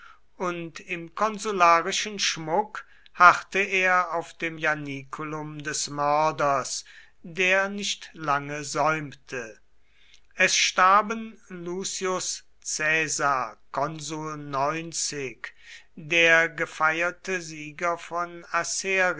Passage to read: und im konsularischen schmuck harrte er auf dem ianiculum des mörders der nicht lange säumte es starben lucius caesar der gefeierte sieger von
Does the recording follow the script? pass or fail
pass